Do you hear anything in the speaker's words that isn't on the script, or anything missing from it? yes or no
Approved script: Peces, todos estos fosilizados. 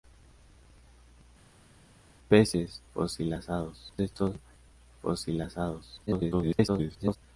yes